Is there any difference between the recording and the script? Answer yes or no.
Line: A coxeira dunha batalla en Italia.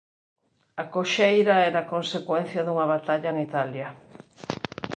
yes